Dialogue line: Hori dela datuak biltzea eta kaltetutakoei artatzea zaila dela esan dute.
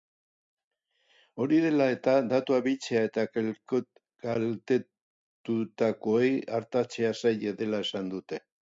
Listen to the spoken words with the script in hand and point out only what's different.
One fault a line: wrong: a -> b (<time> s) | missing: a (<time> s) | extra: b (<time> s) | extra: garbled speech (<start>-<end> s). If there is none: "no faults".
extra: eta (1.9 s)